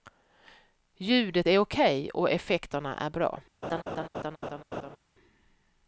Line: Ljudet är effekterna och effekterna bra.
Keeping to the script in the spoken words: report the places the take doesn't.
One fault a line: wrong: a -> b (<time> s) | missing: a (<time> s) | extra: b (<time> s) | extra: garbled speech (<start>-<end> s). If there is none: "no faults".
wrong: effekterna -> okej (1.6 s)
extra: är (2.9 s)